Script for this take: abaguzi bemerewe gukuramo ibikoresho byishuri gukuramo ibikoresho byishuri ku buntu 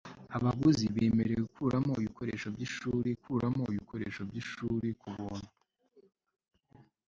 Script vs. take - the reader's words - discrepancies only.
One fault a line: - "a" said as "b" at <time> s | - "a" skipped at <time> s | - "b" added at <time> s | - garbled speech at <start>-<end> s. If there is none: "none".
none